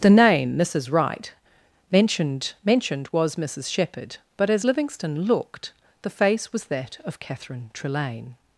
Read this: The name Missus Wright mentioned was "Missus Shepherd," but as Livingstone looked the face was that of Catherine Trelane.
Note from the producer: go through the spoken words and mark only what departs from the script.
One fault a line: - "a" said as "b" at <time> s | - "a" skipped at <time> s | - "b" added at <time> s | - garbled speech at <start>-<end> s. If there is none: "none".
- "mentioned" added at 2.6 s